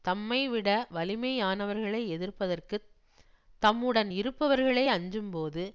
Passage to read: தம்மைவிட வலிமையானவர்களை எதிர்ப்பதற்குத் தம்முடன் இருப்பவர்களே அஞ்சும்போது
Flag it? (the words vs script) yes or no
no